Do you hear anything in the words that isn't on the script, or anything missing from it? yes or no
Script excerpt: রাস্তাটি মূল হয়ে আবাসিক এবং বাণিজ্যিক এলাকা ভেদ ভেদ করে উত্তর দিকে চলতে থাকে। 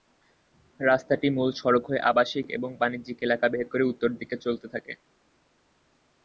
yes